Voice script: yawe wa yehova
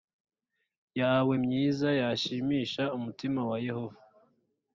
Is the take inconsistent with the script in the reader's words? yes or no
yes